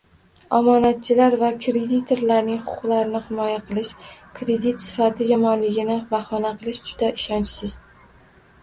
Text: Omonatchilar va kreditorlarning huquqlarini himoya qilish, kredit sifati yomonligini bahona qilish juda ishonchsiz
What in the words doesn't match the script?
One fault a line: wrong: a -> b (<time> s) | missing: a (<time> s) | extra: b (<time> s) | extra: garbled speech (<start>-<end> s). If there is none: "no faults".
no faults